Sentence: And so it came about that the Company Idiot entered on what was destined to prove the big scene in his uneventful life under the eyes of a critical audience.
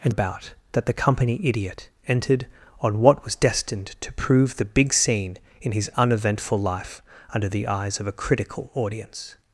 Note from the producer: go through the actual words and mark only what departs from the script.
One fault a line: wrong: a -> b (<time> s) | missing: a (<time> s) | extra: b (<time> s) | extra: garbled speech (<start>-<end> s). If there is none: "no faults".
missing: so it came (0.1 s)